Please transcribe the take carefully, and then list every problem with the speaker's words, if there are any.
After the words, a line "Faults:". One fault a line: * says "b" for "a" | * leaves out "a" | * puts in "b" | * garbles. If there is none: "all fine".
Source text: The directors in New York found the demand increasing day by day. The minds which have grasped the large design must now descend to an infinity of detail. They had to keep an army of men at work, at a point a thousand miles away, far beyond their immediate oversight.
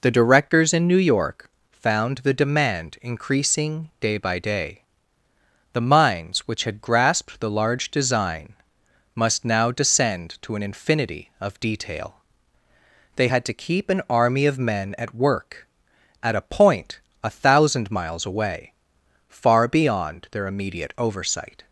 The directors in New York found the demand increasing day by day. The minds which had grasped the large design must now descend to an infinity of detail. They had to keep an army of men at work, at a point a thousand miles away, far beyond their immediate oversight.
Faults:
* says "had" for "have"